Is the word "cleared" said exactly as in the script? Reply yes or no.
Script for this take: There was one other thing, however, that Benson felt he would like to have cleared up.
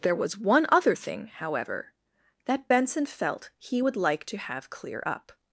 no